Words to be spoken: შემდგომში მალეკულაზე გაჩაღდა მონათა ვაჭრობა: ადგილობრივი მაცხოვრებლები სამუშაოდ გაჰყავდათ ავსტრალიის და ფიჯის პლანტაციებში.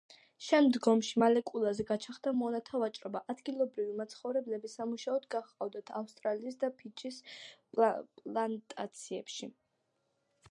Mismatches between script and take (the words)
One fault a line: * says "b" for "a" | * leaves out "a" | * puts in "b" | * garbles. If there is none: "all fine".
all fine